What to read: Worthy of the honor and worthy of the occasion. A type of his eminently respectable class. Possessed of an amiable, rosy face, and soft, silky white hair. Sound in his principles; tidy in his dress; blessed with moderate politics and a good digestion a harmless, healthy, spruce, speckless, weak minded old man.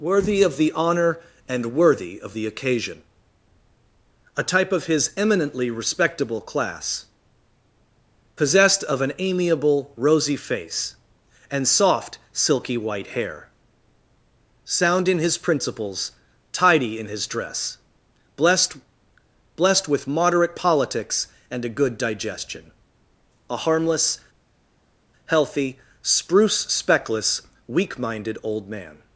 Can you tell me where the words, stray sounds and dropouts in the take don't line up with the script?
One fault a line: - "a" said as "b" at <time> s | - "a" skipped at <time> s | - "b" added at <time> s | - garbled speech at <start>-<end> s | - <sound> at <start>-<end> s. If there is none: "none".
- "blessed" added at 19.5 s